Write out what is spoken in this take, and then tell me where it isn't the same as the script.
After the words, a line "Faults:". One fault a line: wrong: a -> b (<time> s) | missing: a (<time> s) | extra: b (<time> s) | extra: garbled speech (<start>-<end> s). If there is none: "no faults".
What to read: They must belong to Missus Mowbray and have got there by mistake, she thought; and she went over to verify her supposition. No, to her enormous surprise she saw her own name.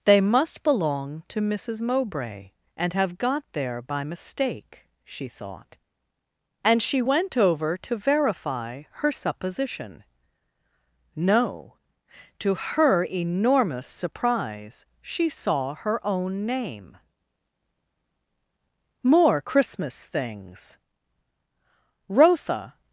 They must belong to Missus Mowbray and have got there by mistake, she thought; and she went over to verify her supposition. No, to her enormous surprise she saw her own name. More Christmas things! Rotha
Faults:
extra: More Christmas things Rotha (19.0 s)